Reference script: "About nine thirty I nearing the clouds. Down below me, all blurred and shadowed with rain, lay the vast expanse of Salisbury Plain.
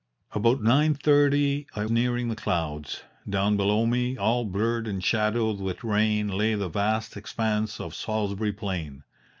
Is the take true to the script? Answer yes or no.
yes